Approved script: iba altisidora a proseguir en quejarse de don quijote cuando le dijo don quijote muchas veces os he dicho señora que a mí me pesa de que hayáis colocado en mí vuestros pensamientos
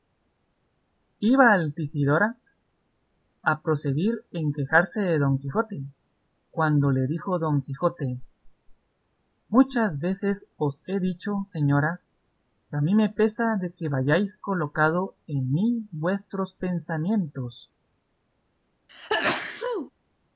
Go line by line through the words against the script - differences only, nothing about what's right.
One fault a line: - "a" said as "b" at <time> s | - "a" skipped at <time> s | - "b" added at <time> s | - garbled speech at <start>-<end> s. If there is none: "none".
none